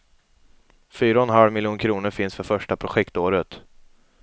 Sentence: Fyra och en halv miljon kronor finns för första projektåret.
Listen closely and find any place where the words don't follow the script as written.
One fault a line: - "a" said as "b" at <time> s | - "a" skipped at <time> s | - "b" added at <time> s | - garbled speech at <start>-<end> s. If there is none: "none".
none